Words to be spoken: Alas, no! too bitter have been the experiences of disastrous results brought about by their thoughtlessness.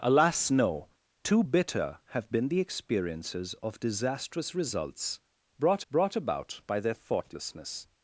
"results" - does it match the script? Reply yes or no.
yes